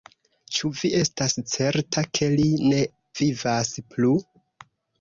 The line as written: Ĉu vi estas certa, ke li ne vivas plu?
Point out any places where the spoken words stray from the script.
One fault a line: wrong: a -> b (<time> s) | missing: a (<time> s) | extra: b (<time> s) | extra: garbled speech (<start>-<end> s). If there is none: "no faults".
no faults